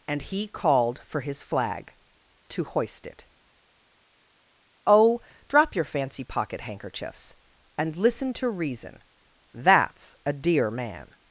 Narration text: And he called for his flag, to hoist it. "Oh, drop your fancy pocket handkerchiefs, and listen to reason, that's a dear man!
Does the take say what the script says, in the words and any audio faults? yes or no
yes